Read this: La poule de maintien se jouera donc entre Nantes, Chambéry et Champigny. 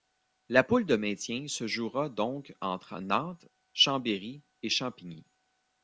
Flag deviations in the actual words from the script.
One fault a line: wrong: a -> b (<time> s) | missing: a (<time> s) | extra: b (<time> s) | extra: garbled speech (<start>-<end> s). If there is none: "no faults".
no faults